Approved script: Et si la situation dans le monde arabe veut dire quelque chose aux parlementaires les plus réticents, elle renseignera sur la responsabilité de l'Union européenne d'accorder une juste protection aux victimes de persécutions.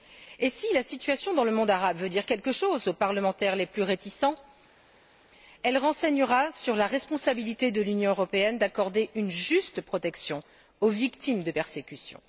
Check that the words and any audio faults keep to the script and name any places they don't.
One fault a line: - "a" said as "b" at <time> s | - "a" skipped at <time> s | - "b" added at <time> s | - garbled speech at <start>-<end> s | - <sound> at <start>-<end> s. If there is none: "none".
none